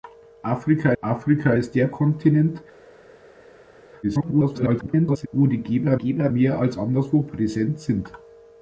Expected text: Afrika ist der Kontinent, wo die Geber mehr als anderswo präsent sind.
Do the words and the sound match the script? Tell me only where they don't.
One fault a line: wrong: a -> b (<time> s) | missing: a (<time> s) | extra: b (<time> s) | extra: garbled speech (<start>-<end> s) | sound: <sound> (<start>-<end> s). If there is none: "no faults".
extra: afrika (1.0 s)
extra: garbled speech (4.0-5.3 s)
extra: Geber (5.9 s)